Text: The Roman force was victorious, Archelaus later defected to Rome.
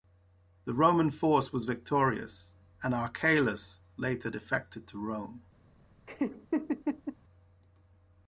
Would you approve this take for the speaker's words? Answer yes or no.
no